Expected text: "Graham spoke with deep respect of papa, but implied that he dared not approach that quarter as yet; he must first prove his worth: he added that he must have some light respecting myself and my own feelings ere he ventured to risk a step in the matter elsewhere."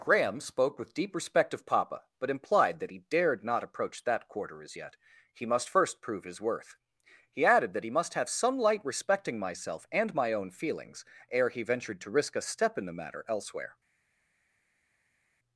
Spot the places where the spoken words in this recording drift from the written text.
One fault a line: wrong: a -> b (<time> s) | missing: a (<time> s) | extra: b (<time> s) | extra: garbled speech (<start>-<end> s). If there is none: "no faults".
no faults